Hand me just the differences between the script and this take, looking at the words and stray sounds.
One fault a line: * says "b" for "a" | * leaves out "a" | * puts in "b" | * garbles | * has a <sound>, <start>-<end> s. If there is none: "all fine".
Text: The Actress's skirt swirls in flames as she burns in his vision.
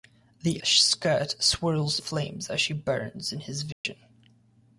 * leaves out "Actress's"
* leaves out "in"
* has a dropout, 3.7-3.9 s